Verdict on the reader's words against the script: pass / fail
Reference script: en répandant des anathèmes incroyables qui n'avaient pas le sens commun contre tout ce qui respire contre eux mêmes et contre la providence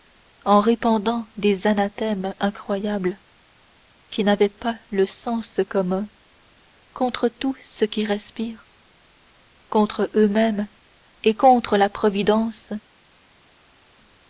pass